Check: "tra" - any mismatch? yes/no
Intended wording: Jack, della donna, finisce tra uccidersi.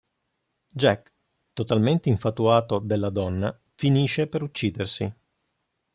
yes